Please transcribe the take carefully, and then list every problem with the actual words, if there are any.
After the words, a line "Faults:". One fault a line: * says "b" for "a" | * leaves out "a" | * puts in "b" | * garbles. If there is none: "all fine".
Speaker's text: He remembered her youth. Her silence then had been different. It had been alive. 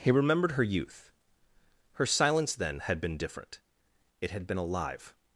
He remembered her youth. Her silence then had been different. It had been alive.
Faults:
all fine